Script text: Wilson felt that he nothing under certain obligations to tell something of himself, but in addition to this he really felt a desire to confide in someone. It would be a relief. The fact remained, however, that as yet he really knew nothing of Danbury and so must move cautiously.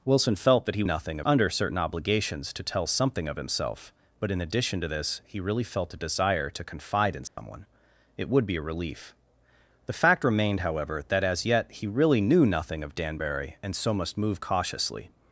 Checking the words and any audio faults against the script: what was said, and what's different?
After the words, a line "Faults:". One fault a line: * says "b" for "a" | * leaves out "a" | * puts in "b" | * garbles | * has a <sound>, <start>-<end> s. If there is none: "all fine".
Wilson felt that he nothing under certain obligations to tell something of himself, but in addition to this he really felt a desire to confide in someone. It would be a relief. The fact remained, however, that as yet he really knew nothing of Danbury and so must move cautiously.
Faults:
* has a dropout, 7.3-7.4 s